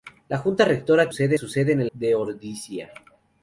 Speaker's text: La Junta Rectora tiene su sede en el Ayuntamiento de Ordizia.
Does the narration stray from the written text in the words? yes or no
yes